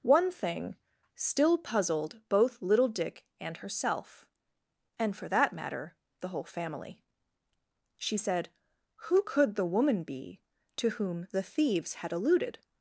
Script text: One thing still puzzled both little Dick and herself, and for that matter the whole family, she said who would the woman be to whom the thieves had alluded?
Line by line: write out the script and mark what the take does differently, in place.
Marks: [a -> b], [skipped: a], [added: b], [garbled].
One thing still puzzled both little Dick and herself, and for that matter the whole family, she said who [would -> could] the woman be to whom the thieves had alluded?